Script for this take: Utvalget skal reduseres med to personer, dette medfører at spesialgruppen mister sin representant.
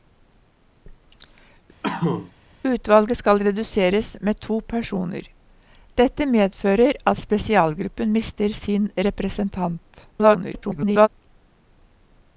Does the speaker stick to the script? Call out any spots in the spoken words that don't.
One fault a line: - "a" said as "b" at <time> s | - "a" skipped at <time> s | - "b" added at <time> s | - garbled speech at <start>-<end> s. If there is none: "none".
- garbled speech at 10.1-11.1 s